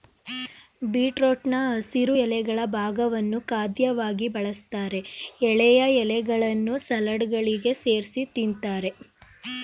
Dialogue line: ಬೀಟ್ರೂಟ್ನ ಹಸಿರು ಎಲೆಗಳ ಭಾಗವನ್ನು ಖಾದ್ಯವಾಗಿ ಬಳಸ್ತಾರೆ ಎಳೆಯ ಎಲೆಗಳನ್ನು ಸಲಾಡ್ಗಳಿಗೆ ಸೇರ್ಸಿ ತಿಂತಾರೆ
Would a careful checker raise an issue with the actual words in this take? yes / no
no